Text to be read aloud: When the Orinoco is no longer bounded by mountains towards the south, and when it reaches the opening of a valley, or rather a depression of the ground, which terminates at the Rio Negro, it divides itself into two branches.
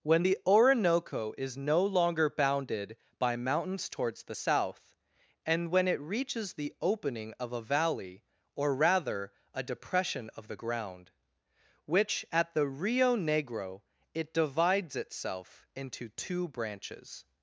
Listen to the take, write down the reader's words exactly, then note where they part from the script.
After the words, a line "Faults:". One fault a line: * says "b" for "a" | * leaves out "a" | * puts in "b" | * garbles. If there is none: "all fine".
When the Orinoco is no longer bounded by mountains towards the south, and when it reaches the opening of a valley, or rather a depression of the ground, which at the Rio Negro, it divides itself into two branches.
Faults:
* leaves out "terminates"